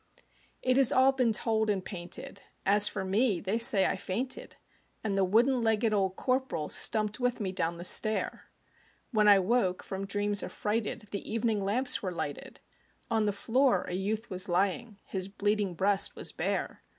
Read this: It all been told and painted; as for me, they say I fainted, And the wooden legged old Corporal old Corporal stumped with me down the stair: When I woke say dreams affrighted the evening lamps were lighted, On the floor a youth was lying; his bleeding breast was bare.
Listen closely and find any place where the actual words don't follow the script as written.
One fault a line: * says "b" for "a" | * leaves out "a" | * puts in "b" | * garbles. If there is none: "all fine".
* puts in "has"
* leaves out "old Corporal"
* says "from" for "say"